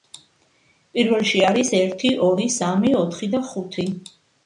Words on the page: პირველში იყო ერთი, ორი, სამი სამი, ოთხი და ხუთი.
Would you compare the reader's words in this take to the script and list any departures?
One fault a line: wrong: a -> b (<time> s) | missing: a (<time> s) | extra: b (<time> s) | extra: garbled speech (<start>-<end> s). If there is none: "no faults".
wrong: იყო -> არის (1.5 s)
missing: სამი (3.0 s)